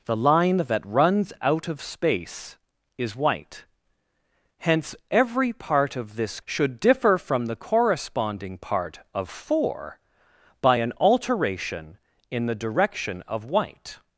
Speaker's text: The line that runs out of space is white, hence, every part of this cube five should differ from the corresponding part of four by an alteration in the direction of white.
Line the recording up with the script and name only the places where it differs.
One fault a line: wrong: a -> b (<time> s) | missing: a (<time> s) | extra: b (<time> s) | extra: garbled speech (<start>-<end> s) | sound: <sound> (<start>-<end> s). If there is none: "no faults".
missing: cube five (6.4 s)